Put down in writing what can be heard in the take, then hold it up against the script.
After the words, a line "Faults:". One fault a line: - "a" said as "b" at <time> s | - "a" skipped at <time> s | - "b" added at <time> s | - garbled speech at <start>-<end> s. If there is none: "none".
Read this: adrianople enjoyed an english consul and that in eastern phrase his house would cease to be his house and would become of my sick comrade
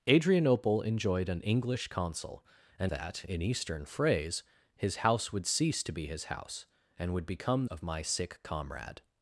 adrianople enjoyed an english consul and that in eastern phrase his house would cease to be his house and would become of my sick comrade
Faults:
none